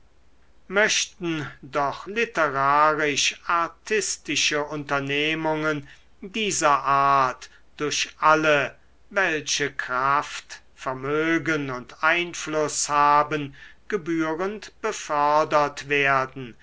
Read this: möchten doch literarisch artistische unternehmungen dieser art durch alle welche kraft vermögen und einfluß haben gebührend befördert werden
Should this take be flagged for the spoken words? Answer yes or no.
no